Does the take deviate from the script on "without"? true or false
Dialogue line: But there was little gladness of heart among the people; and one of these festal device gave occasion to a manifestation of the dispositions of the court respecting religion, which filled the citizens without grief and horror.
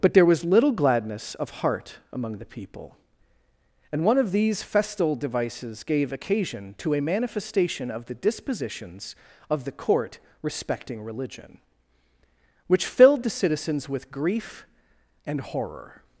true